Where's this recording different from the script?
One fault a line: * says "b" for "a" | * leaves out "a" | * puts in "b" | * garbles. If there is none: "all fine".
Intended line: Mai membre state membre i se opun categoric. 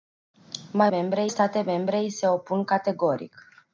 all fine